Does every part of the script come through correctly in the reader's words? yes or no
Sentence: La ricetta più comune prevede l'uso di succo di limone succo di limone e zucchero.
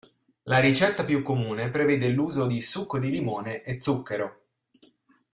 no